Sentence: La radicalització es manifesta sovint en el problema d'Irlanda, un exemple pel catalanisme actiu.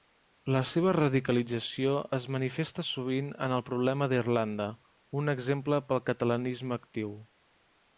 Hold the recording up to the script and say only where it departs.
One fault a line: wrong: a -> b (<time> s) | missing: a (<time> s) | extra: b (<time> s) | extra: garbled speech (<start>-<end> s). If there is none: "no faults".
extra: seva (0.7 s)